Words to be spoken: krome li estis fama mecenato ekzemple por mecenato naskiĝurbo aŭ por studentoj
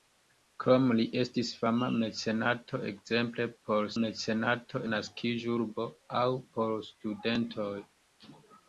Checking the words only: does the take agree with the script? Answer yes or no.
yes